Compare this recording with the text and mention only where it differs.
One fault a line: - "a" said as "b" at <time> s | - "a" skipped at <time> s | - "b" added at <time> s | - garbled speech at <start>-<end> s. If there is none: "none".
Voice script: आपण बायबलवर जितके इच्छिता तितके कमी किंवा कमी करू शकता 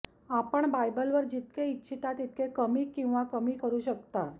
none